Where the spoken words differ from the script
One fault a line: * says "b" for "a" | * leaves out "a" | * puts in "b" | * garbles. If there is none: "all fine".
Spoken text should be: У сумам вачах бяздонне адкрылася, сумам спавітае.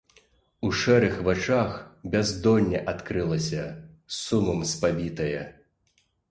* says "шэрых" for "сумам"